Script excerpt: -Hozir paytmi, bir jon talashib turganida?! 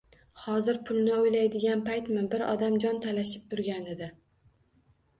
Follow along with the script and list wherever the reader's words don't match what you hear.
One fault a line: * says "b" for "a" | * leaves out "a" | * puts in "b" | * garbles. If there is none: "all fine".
* puts in "pulni o'ylaydigan"
* puts in "odam"